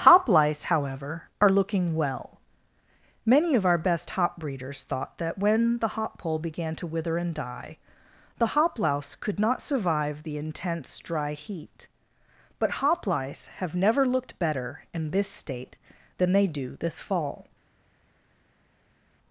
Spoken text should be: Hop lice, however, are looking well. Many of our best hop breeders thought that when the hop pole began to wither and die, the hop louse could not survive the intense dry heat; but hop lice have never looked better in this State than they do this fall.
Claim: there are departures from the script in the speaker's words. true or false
false